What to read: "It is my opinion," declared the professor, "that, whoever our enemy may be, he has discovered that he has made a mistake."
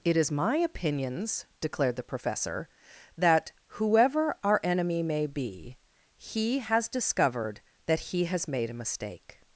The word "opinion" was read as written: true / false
false